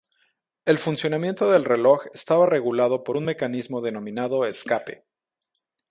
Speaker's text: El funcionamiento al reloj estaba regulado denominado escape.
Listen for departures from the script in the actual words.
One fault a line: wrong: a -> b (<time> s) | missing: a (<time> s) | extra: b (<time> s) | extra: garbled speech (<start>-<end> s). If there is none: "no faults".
wrong: al -> del (1.5 s)
extra: por un mecanismo (3.0 s)